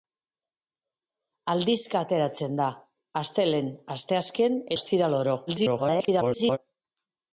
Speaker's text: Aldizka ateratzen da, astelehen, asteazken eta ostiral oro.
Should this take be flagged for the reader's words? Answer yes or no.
yes